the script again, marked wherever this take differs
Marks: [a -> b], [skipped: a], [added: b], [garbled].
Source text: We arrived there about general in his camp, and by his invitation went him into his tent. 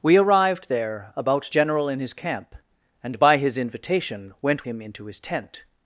We arrived there about general in his camp, and by his invitation went him into his tent.